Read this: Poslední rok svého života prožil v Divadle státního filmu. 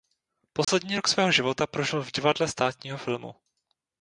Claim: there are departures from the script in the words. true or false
false